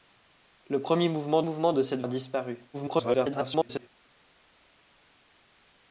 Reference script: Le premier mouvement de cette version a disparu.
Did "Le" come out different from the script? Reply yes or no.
no